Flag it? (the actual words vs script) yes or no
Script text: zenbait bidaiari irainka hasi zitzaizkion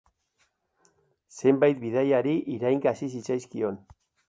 no